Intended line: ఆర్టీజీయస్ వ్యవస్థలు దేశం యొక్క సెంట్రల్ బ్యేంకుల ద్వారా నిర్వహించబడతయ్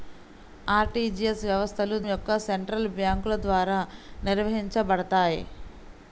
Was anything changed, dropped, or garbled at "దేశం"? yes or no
yes